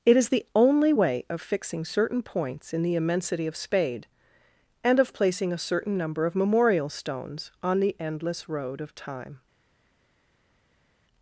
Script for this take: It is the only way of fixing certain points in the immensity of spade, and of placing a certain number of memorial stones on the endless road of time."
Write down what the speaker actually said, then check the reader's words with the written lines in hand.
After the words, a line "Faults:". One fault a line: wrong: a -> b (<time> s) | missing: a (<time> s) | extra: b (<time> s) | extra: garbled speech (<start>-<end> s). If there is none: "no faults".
It is the only way of fixing certain points in the immensity of spade, and of placing a certain number of memorial stones on the endless road of time."
Faults:
no faults